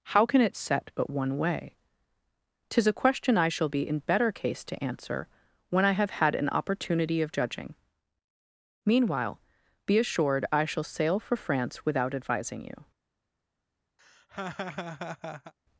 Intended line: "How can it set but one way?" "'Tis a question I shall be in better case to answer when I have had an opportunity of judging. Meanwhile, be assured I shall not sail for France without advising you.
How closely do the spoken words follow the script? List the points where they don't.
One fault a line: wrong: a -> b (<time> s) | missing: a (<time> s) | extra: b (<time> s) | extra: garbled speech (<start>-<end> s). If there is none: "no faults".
missing: not (10.8 s)